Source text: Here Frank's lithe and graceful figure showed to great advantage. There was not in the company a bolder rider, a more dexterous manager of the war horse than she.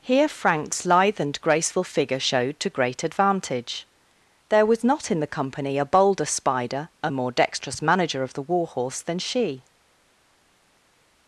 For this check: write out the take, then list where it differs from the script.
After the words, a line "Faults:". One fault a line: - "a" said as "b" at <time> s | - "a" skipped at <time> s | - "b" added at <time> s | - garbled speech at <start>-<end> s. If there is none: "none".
Here Frank's lithe and graceful figure showed to great advantage. There was not in the company a bolder spider, a more dexterous manager of the war horse than she.
Faults:
- "rider" said as "spider" at 6.2 s